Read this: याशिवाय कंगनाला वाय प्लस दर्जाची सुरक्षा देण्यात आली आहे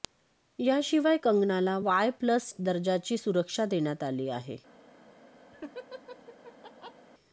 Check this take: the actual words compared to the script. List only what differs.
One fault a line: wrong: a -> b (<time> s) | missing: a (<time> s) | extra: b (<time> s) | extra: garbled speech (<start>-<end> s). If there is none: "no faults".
no faults